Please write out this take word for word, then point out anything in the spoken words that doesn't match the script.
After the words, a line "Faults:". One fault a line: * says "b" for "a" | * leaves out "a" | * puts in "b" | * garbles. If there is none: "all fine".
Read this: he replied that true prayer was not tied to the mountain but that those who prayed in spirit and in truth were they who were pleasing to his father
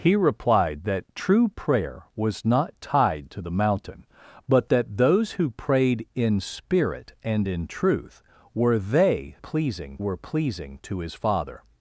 he replied that true prayer was not tied to the mountain but that those who prayed in spirit and in truth were they pleasing were pleasing to his father
Faults:
* says "pleasing" for "who"